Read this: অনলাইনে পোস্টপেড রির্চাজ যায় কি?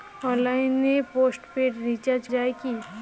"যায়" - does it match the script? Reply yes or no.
yes